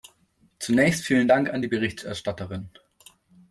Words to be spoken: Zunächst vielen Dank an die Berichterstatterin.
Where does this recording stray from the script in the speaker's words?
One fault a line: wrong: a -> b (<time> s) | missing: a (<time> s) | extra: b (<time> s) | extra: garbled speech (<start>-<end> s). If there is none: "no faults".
no faults